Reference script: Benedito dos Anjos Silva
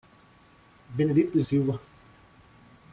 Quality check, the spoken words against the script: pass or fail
fail